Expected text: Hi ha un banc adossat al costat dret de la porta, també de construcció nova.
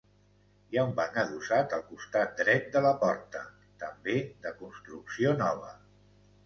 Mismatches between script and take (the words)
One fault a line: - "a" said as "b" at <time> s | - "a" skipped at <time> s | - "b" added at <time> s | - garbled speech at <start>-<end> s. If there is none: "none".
none